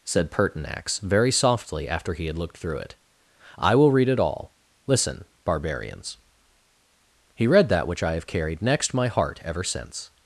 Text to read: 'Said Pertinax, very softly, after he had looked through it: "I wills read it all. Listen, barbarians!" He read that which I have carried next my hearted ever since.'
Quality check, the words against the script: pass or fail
fail